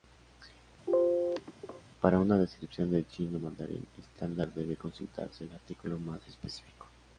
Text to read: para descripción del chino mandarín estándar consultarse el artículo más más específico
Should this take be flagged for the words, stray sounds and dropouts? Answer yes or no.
yes